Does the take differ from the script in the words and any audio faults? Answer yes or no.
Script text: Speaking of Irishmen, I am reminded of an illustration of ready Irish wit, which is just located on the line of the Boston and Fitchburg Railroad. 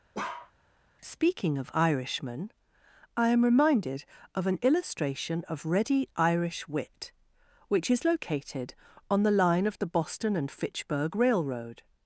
yes